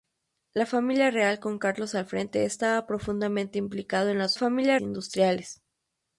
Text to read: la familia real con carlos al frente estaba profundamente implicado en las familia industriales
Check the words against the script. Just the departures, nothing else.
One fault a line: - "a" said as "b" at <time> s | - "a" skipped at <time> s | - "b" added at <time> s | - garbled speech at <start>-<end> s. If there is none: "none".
none